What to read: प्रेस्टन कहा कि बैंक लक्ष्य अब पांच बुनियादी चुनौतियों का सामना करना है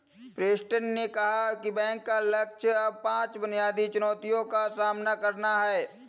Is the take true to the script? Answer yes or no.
no